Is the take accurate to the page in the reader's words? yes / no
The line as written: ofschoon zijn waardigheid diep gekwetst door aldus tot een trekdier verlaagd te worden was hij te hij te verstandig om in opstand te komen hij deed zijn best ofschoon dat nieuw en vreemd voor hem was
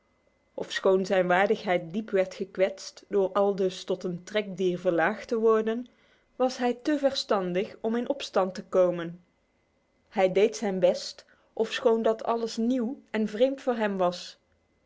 no